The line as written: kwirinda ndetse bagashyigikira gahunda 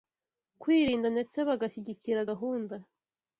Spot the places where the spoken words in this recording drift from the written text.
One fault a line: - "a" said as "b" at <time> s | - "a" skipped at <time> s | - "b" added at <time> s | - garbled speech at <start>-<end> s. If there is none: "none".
none